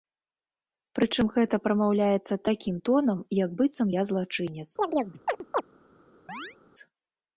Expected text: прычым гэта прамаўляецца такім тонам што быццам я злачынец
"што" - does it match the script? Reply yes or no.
no